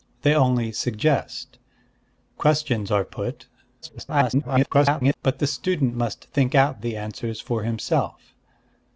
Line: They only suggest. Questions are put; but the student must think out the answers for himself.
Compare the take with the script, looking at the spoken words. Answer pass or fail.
fail